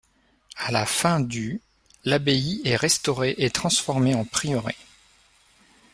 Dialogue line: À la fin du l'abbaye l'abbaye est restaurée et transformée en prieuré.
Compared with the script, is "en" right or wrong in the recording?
right